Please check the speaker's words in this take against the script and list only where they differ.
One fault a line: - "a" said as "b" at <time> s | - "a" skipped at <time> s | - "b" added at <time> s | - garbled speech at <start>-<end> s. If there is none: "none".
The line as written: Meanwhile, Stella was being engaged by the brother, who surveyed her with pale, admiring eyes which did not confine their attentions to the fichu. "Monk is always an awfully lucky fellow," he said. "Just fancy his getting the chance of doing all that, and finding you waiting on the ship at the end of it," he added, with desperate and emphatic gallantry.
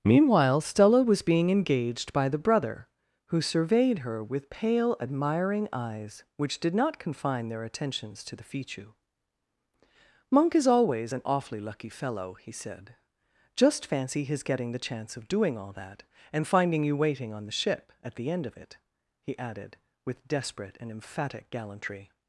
none